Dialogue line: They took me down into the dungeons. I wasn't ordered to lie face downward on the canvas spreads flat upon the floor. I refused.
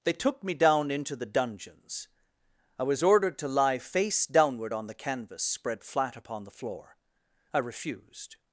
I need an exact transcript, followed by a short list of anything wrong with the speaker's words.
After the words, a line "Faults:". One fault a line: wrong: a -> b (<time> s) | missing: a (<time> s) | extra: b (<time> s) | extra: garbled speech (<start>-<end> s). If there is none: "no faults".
They took me down into the dungeons. I was ordered to lie face downward on the canvas spread flat upon the floor. I refused.
Faults:
wrong: wasn't -> was (2.8 s)
wrong: spreads -> spread (5.4 s)